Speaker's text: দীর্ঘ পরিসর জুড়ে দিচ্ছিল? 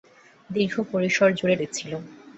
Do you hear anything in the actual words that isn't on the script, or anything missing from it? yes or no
no